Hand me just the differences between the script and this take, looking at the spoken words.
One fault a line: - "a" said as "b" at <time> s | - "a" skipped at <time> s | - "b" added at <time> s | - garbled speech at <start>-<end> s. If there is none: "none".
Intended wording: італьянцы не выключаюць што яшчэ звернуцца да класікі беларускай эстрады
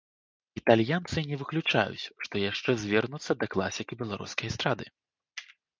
none